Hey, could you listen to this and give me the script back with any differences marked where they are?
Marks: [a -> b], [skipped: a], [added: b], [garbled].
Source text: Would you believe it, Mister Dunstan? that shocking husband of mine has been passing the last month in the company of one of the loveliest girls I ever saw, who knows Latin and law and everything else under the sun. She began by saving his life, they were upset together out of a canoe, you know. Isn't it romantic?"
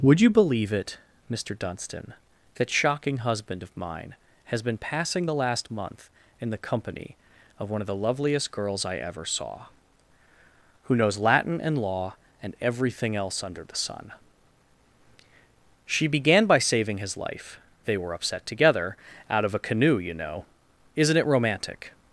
Would you believe it, Mister Dunstan? that shocking husband of mine has been passing the last month in the company of one of the loveliest girls I ever saw, who knows Latin and law and everything else under the sun. She began by saving his life, they were upset together out of a canoe, you know. Isn't it romantic?"